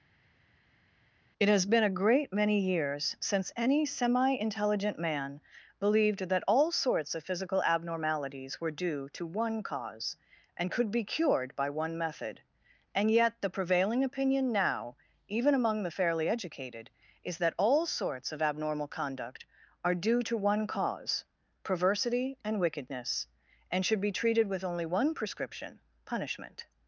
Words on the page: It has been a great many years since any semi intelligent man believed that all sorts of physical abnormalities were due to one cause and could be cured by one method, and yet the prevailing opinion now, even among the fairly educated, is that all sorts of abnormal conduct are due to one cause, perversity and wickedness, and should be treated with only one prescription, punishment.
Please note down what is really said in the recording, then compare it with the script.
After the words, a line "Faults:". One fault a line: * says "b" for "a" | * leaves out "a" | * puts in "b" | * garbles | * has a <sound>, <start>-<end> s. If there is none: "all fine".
It has been a great many years since any semi intelligent man believed that all sorts of physical abnormalities were due to one cause and could be cured by one method, and yet the prevailing opinion now, even among the fairly educated, is that all sorts of abnormal conduct are due to one cause, perversity and wickedness, and should be treated with only one prescription, punishment.
Faults:
all fine